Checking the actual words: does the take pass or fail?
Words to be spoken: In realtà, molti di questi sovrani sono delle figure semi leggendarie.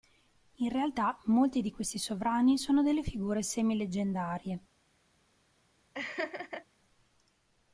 pass